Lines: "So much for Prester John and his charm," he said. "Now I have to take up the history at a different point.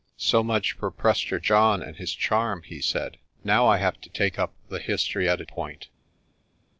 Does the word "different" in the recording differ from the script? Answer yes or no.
yes